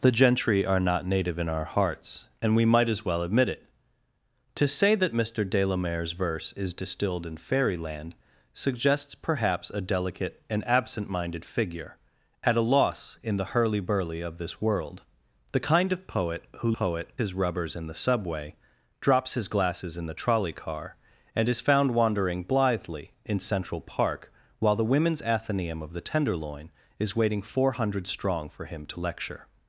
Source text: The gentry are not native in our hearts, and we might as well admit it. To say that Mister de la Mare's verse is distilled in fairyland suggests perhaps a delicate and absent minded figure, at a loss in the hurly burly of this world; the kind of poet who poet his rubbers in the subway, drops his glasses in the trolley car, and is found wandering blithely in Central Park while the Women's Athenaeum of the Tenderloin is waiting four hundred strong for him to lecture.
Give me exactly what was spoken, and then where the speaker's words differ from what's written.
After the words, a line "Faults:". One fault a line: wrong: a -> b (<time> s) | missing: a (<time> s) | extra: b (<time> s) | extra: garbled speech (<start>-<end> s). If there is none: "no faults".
The gentry are not native in our hearts, and we might as well admit it. To say that Mister de la Mare's verse is distilled in fairyland suggests perhaps a delicate and absent minded figure, at a loss in the hurly burly of this world; the kind of poet who poet his rubbers in the subway, drops his glasses in the trolley car, and is found wandering blithely in Central Park while the Women's Athenaeum of the Tenderloin is waiting four hundred strong for him to lecture.
Faults:
no faults